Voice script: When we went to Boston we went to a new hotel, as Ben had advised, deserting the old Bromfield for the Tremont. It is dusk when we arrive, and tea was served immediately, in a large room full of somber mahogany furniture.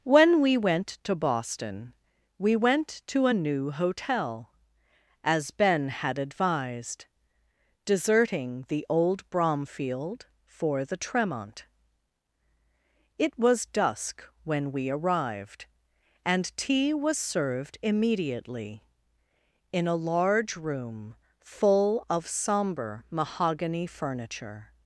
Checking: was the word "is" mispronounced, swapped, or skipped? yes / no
yes